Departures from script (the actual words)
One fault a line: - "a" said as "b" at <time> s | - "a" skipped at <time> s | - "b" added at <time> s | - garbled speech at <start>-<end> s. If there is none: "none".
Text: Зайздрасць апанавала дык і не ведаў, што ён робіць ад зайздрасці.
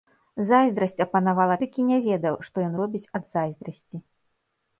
none